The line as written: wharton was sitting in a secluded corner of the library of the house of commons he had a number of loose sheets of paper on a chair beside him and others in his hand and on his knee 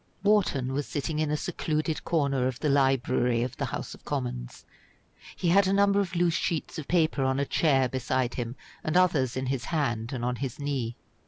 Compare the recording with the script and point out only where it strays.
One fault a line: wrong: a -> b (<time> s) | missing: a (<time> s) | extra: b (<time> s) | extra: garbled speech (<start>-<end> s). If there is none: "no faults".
no faults